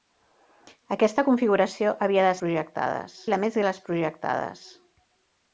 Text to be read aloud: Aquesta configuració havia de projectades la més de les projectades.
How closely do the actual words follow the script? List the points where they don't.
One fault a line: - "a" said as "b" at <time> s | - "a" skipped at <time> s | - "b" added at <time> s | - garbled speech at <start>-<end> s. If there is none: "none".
none